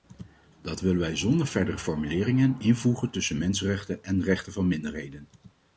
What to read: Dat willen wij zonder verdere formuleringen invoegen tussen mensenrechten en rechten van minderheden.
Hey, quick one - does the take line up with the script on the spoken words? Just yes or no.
yes